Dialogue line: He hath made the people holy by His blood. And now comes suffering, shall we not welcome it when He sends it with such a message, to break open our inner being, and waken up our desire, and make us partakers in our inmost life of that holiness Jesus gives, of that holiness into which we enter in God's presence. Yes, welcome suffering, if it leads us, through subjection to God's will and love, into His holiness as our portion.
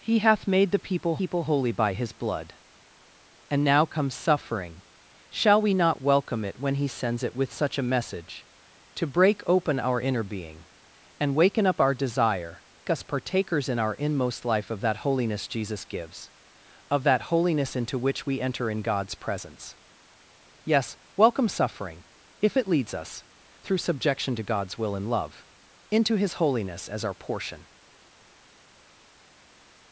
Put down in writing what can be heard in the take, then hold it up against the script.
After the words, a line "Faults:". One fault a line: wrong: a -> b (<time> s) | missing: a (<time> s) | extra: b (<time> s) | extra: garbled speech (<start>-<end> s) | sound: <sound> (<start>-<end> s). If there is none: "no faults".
He hath made the people people holy by His blood. And now comes suffering, shall we not welcome it when He sends it with such a message, to break open our inner being, and waken up our desire, us partakers in our inmost life of that holiness Jesus gives, of that holiness into which we enter in God's presence. Yes, welcome suffering, if it leads us, through subjection to God's will and love, into His holiness as our portion.
Faults:
extra: people (1.2 s)
missing: and make (12.6 s)